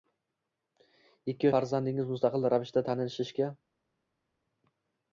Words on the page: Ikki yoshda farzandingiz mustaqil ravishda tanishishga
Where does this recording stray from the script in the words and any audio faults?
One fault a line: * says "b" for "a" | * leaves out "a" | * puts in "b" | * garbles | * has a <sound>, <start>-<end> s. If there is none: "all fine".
* leaves out "yoshda"